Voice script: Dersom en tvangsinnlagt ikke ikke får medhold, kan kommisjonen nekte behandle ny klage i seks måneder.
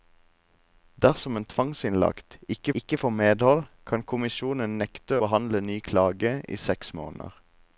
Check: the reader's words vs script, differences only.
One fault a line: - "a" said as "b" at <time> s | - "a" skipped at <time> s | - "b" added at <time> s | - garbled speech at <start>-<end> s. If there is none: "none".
none